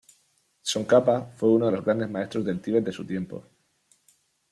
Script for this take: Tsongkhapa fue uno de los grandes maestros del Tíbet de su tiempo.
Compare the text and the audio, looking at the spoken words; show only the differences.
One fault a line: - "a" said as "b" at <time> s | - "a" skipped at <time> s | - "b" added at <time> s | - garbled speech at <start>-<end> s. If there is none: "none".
none